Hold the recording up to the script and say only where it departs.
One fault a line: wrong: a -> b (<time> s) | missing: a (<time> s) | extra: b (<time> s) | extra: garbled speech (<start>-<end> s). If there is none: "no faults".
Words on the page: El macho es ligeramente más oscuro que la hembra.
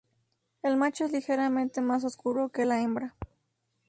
no faults